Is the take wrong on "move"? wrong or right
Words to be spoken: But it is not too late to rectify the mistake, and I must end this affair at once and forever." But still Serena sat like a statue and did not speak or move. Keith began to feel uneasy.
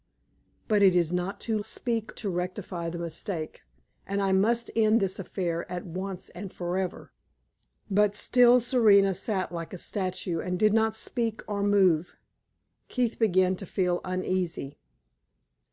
right